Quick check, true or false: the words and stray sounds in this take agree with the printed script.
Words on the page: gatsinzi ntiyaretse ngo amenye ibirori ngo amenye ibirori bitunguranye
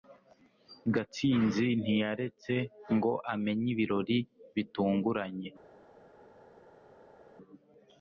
false